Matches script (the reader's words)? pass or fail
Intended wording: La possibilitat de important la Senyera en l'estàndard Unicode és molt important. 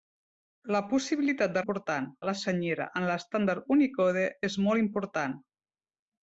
pass